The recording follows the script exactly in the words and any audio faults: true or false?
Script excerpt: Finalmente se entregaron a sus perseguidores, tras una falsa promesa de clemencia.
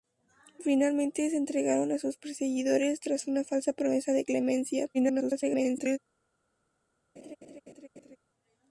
false